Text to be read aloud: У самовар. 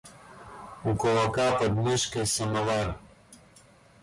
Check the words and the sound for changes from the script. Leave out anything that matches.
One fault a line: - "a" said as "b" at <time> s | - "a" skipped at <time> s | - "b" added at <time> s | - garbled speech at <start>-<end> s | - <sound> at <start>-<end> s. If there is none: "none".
- "кулака под мышкой" added at 0.9 s